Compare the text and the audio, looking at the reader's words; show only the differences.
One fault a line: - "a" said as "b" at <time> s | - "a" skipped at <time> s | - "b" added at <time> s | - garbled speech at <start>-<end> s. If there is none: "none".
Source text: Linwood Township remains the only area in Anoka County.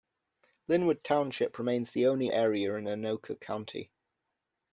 none